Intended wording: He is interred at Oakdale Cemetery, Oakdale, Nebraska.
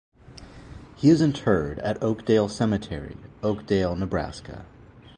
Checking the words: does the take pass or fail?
pass